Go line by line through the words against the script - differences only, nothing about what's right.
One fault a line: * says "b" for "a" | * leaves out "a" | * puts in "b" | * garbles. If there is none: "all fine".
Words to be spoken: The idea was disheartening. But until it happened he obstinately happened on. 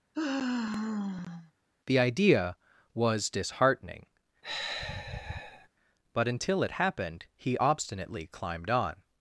* says "climbed" for "happened"